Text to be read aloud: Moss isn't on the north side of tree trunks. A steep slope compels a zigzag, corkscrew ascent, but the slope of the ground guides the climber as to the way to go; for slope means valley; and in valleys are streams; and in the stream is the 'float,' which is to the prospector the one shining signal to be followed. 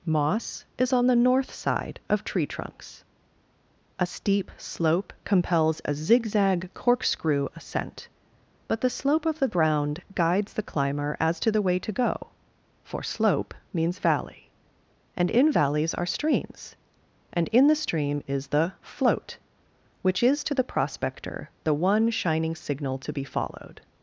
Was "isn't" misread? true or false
true